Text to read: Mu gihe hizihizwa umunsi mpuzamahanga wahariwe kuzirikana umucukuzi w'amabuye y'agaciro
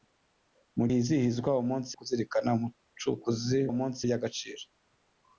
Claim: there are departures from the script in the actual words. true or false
true